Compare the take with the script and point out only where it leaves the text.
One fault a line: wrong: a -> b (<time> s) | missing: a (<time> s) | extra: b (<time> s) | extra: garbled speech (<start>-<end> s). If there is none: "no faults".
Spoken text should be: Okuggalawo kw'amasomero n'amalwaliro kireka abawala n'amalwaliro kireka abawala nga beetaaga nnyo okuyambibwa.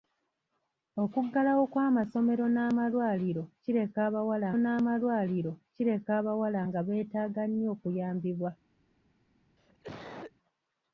no faults